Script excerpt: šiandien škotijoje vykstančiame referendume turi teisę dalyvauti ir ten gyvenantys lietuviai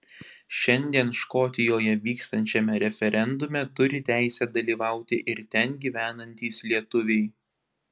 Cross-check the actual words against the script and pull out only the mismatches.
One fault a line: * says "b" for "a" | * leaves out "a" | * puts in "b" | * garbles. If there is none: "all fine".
all fine